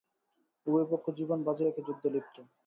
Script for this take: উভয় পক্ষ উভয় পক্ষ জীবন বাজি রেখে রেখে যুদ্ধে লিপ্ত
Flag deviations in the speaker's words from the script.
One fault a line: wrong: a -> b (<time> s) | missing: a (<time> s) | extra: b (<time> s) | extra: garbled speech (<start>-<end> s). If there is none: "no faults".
missing: উভয় পক্ষ (1.1 s)
missing: রেখে (1.8 s)